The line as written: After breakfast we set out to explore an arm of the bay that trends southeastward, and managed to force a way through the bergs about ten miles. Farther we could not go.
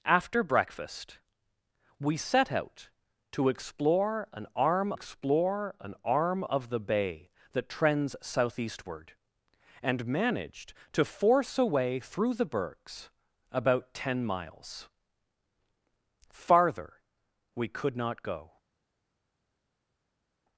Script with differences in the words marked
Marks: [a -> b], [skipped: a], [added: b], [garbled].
After breakfast we set out to explore an arm [added: explore an arm] of the bay that trends southeastward, and managed to force a way through the bergs about ten miles. Farther we could not go.